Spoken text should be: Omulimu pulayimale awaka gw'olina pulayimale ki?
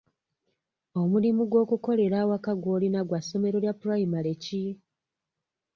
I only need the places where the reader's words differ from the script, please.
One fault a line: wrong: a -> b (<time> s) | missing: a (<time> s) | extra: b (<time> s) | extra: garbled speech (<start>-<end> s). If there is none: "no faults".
wrong: pulayimale -> gw'okukolera (1.5 s)
extra: gwa ssomero lya (3.1 s)